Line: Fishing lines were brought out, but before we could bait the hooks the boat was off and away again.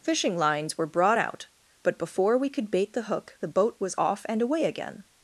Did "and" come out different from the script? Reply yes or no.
no